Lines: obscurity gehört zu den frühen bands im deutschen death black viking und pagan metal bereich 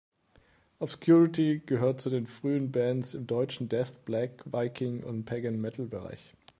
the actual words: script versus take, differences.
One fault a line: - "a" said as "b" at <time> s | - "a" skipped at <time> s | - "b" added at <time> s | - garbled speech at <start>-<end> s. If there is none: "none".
none